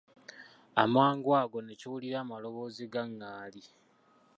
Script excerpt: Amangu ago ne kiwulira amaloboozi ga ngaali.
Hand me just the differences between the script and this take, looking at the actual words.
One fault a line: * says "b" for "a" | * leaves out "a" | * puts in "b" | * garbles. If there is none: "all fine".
all fine